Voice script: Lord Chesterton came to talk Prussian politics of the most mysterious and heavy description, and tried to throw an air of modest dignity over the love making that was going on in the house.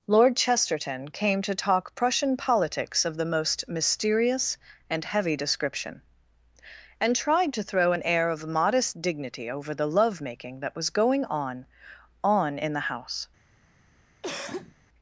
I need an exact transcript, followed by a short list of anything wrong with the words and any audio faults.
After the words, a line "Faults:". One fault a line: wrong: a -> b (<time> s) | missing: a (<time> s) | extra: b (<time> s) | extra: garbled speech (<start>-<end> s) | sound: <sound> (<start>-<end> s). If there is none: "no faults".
Lord Chesterton came to talk Prussian politics of the most mysterious and heavy description, and tried to throw an air of modest dignity over the love making that was going on on in the house.
Faults:
extra: on (12.2 s)
sound: cough (14.2-14.8 s)